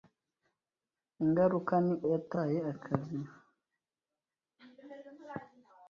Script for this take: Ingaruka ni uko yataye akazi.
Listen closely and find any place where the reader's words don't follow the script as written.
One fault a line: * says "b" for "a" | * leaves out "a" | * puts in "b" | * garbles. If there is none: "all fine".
* leaves out "uko"